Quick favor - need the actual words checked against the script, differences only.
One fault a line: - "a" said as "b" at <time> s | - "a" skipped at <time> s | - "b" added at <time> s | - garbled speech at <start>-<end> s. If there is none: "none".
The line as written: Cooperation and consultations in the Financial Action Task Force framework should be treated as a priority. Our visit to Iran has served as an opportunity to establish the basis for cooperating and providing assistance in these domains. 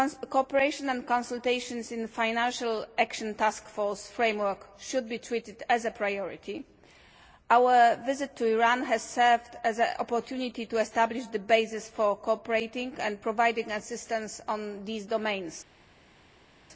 none